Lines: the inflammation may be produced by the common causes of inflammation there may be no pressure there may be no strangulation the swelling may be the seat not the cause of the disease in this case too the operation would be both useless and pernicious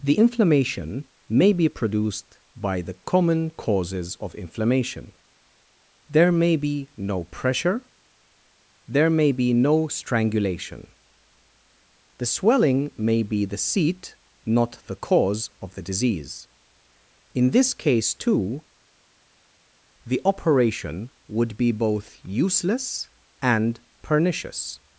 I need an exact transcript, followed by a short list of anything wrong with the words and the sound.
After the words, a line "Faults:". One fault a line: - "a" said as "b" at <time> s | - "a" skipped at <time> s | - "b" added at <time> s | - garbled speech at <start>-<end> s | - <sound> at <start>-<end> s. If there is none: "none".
the inflammation may be produced by the common causes of inflammation there may be no pressure there may be no strangulation the swelling may be the seat not the cause of the disease in this case too the operation would be both useless and pernicious
Faults:
none